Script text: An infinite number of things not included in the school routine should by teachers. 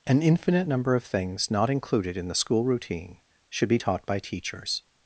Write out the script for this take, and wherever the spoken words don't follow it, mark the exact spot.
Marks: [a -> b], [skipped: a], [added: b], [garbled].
An infinite number of things not included in the school routine should [added: be taught] by teachers.